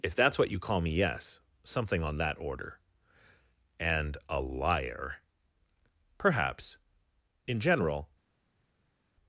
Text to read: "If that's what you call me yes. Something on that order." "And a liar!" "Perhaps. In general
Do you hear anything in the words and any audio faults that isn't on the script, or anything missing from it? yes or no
no